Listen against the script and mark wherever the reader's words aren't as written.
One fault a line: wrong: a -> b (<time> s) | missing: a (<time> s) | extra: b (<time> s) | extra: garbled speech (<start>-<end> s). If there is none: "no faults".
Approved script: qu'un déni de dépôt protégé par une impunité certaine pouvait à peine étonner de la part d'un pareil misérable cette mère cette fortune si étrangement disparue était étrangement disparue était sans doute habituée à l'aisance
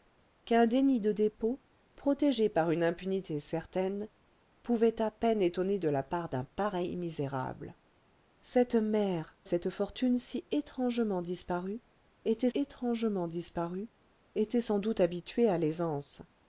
no faults